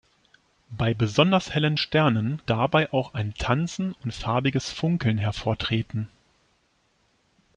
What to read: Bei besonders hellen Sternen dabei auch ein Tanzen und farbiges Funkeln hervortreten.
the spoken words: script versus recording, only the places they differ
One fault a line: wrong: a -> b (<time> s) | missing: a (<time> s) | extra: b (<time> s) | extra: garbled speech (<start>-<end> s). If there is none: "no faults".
no faults